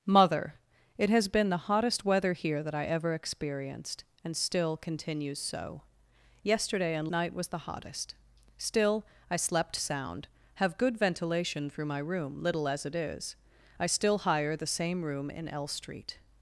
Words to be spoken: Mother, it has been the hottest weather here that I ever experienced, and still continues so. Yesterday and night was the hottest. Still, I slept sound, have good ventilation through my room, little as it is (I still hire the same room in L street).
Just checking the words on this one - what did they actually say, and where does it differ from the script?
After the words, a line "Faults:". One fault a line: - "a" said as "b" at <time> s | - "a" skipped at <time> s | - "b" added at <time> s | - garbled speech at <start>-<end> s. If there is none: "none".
Mother, it has been the hottest weather here that I ever experienced, and still continues so. Yesterday and night was the hottest. Still, I slept sound, have good ventilation through my room, little as it is (I still hire the same room in L street).
Faults:
none